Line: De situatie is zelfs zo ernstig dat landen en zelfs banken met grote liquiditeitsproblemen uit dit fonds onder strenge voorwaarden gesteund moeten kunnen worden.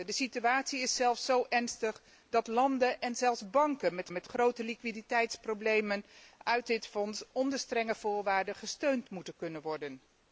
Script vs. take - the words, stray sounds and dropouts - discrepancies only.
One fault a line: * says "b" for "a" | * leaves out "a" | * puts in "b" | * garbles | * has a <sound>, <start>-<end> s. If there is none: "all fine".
* puts in "met"